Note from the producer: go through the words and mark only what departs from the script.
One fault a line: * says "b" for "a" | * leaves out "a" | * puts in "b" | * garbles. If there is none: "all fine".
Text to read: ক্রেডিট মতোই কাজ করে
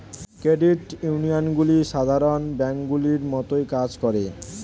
* puts in "ইউনিয়নগুলি সাধারণ ব্যাঙ্কগুলির"